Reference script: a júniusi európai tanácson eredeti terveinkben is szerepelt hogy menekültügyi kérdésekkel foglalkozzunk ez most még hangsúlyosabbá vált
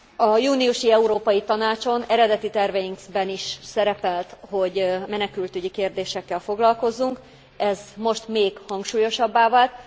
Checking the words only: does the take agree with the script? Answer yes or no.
yes